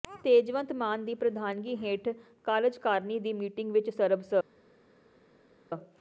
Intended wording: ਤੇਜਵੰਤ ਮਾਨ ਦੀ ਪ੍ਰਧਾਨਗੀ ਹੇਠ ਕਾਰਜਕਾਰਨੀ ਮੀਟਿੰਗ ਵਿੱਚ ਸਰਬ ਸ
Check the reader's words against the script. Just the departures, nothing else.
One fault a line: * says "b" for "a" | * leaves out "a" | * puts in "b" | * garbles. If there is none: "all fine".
* puts in "ਦੀ"